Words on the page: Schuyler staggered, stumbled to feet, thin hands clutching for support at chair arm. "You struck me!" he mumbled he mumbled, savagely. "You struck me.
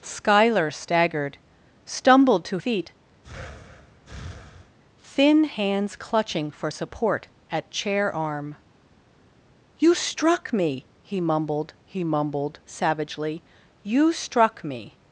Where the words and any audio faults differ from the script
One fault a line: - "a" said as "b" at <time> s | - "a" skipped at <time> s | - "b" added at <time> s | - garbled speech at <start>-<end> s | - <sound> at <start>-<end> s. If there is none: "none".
- breath at 3.2-4.8 s